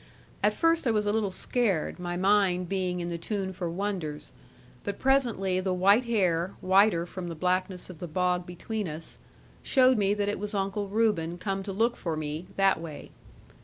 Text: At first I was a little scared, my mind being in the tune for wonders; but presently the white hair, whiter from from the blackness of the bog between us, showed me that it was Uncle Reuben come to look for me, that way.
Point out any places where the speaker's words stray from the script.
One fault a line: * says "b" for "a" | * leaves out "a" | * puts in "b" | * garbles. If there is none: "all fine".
* leaves out "from"